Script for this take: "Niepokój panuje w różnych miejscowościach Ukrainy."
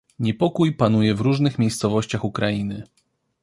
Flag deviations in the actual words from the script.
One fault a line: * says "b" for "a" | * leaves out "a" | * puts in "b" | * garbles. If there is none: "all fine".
all fine